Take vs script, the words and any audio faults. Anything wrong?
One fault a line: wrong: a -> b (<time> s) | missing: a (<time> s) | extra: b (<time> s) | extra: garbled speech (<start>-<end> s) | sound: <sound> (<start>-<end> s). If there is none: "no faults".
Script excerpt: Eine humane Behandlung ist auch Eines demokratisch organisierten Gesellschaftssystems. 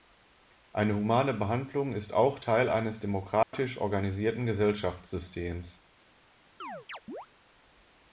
extra: Teil (2.4 s)
sound: dropout (3.4-3.5 s)
sound: chirp (6.6-7.3 s)